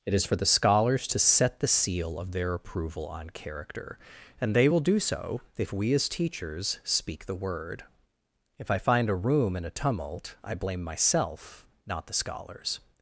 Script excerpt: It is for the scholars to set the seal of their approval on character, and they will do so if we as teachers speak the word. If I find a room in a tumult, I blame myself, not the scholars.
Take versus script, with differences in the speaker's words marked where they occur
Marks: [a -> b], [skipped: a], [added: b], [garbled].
It is for the scholars to set the seal of their approval on character, and they will do so if we as teachers speak the word. If I find a room in a tumult, I blame myself, not the scholars.